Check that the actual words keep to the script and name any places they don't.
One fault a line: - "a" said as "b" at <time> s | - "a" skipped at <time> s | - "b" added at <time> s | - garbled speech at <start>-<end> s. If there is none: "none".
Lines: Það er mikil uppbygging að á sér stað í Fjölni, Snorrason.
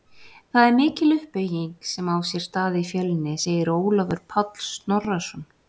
- "að" said as "sem" at 1.9 s
- "segir Ólafur Páll" added at 3.4 s